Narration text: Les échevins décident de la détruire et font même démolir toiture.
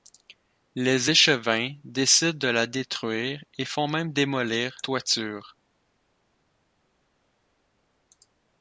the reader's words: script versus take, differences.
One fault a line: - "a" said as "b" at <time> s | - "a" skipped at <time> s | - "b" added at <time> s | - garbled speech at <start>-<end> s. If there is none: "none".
none